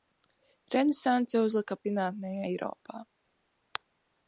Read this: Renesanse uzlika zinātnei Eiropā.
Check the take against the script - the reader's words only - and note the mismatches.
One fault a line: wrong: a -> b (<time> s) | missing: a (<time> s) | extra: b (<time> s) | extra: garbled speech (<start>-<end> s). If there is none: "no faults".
no faults